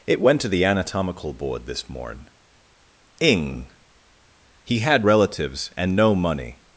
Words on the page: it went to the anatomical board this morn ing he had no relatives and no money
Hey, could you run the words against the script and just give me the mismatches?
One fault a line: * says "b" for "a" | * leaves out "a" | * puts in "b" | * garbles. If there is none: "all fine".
* leaves out "no"